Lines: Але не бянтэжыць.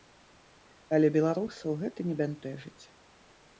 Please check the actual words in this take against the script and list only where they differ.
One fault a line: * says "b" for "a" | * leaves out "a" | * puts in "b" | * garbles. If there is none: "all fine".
* puts in "беларусаў гэта"